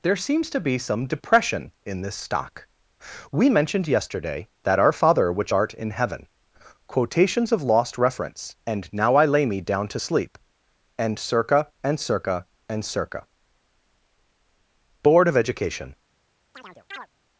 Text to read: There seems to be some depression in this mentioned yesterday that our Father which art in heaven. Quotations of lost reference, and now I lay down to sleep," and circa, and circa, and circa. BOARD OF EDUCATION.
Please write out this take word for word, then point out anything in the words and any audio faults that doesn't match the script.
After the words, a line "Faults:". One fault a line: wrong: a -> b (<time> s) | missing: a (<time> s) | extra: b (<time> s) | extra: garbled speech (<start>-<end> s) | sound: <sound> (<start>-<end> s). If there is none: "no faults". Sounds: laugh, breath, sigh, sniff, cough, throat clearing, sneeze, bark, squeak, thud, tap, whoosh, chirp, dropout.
There seems to be some depression in this stock. We mentioned yesterday that our Father which art in heaven. Quotations of lost reference, and now I lay me down to sleep," and circa, and circa, and circa. BOARD OF EDUCATION.
Faults:
extra: stock We (2.1 s)
extra: me (9.4 s)
sound: chirp (16.5-17.1 s)